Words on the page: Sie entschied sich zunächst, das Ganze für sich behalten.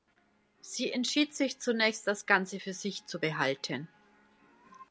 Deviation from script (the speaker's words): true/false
true